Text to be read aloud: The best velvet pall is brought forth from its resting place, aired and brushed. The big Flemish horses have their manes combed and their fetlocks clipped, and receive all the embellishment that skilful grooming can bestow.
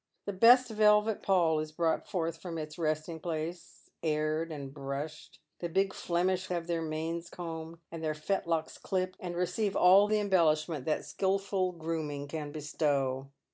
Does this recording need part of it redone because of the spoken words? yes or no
yes